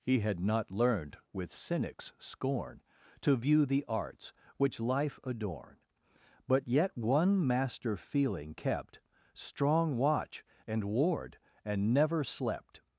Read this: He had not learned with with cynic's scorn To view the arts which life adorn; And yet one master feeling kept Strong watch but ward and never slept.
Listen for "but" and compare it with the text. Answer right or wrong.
wrong